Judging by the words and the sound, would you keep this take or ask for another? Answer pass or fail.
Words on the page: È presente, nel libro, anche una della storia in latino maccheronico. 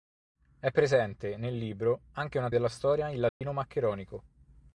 fail